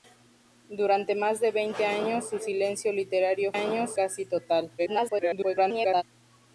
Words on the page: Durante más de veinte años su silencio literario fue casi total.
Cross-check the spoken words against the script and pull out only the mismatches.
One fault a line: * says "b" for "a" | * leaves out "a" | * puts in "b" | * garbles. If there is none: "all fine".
* says "años" for "fue"
* garbles